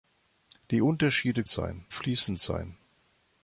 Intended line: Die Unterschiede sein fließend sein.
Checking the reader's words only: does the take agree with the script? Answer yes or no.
yes